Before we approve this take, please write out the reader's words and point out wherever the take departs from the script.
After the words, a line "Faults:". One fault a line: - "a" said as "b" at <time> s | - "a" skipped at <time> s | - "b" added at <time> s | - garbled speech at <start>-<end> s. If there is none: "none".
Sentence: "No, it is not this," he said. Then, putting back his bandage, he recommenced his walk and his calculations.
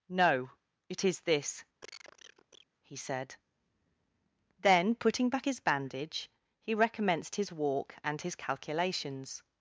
"No, it is this," he said. Then, putting back his bandage, he recommenced his walk and his calculations.
Faults:
- "not" skipped at 1.2 s